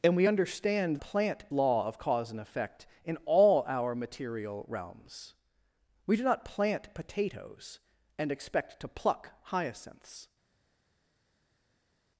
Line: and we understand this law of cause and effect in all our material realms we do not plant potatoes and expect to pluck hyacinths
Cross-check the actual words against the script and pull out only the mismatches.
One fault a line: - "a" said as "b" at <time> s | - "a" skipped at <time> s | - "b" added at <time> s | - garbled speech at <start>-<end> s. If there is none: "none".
- "this" said as "plant" at 1.0 s